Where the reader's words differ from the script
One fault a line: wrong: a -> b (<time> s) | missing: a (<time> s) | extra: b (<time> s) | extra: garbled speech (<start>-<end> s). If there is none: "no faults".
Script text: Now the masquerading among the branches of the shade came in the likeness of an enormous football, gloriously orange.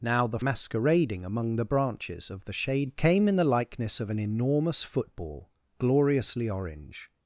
no faults